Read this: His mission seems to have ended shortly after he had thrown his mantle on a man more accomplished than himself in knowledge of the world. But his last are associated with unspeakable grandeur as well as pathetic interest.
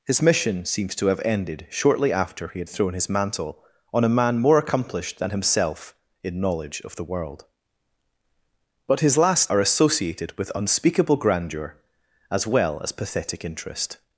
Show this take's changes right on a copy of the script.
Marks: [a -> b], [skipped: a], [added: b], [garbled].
His mission seems to have ended shortly after he had thrown his mantle on a man more accomplished than himself in knowledge of the world. But his last are associated with unspeakable grandeur as well as pathetic interest.